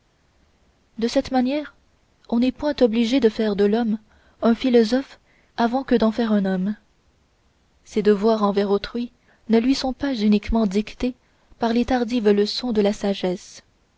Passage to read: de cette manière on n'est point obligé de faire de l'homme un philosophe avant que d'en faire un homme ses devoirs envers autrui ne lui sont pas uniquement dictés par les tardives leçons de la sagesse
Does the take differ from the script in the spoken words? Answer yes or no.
no